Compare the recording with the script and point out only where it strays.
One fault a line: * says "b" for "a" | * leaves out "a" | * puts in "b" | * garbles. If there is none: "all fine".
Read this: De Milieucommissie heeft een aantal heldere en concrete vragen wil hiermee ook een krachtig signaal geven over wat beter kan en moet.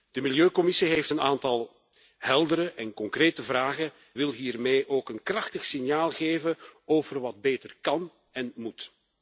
all fine